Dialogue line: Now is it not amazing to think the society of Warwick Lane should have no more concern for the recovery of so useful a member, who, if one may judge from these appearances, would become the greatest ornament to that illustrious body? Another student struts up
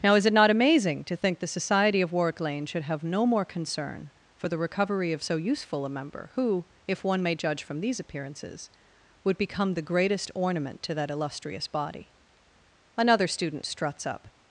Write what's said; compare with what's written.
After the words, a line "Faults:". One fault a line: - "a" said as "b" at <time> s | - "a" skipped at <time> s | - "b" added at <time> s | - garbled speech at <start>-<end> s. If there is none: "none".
Now is it not amazing to think the society of Warwick Lane should have no more concern for the recovery of so useful a member, who, if one may judge from these appearances, would become the greatest ornament to that illustrious body? Another student struts up
Faults:
none